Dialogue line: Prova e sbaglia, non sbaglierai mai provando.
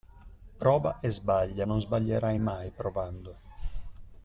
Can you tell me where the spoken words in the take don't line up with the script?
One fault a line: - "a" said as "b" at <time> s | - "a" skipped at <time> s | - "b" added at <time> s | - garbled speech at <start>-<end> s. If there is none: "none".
none